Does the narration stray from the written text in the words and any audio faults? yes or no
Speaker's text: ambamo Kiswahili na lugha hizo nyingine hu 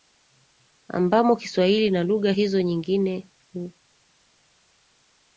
no